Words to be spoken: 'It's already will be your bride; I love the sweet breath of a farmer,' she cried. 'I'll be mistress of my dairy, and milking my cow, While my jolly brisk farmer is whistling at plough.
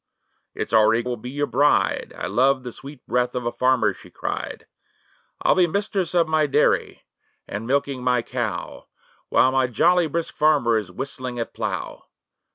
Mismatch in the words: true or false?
false